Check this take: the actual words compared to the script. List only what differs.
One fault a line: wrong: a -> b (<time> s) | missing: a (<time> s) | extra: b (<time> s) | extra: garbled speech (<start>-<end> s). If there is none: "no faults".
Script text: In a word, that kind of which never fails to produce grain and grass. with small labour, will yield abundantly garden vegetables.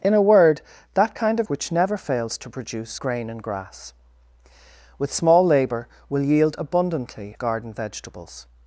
no faults